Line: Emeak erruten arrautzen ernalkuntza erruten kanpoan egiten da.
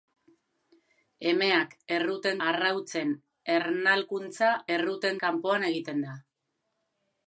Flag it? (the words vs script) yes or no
no